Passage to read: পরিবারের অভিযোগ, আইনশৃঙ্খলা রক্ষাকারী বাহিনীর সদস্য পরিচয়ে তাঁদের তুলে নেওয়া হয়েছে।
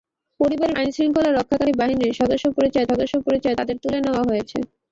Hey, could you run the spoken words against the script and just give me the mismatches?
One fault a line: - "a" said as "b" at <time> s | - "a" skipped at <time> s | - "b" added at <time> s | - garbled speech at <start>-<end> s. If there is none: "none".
- "অভিযোগ" skipped at 0.8 s
- "সদস্য পরিচয়ে" added at 2.9 s